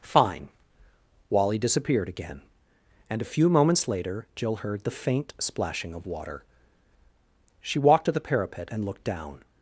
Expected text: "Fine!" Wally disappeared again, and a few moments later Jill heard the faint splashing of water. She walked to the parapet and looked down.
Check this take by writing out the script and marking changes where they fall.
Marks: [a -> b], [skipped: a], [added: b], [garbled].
"Fine!" Wally disappeared again, and a few moments later Jill heard the faint splashing of water. She walked to the parapet and looked down.